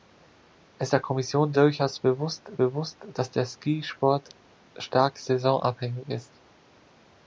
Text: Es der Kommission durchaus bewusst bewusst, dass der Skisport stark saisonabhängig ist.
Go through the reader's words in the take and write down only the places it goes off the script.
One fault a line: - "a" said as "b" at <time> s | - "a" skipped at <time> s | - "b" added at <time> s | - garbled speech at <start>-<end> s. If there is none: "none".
none